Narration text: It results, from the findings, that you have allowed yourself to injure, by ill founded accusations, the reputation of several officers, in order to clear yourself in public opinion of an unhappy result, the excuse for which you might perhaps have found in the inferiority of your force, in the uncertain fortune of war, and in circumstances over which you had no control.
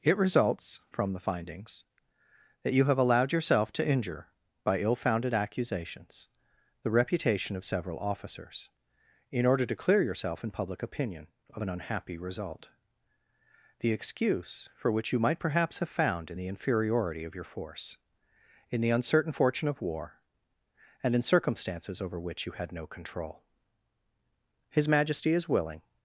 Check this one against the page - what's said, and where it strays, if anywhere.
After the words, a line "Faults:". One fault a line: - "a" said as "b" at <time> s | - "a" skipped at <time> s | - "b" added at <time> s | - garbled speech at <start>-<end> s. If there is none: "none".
It results, from the findings, that you have allowed yourself to injure, by ill founded accusations, the reputation of several officers, in order to clear yourself in public opinion of an unhappy result, the excuse for which you might perhaps have found in the inferiority of your force, in the uncertain fortune of war, and in circumstances over which you had no control. His Majesty is willing
Faults:
- "His Majesty is willing" added at 24.7 s